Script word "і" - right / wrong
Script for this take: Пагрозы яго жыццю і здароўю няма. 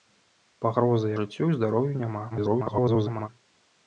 right